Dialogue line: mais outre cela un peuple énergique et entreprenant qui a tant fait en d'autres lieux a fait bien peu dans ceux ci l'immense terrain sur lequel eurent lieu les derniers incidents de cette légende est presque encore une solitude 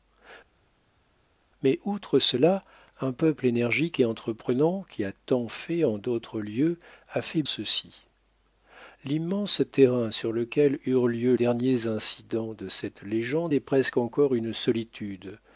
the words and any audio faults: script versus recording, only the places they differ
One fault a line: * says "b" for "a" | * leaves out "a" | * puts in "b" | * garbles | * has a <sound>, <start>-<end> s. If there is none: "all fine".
* leaves out "bien peu dans"
* leaves out "les"